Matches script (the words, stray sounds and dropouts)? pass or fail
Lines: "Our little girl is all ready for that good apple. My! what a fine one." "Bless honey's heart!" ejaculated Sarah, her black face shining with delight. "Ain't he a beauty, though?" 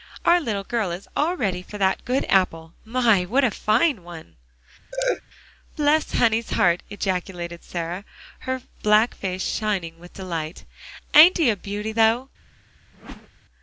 fail